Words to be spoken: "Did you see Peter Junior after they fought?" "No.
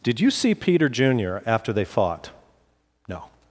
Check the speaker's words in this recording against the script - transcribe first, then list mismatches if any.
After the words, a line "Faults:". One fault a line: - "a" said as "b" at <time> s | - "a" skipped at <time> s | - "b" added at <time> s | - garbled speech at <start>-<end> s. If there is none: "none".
"Did you see Peter Junior after they fought?" "No.
Faults:
none